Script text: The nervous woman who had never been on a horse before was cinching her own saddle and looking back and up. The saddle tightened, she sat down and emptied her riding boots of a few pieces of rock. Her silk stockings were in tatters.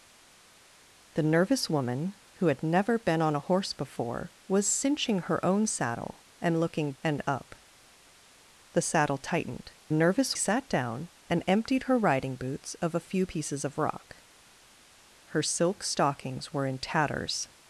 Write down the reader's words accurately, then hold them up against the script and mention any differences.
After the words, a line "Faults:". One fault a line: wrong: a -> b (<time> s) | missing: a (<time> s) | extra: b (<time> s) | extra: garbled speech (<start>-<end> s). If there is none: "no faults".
The nervous woman who had never been on a horse before was cinching her own saddle and looking and up. The saddle tightened, nervous sat down and emptied her riding boots of a few pieces of rock. Her silk stockings were in tatters.
Faults:
missing: back (6.9 s)
wrong: she -> nervous (9.9 s)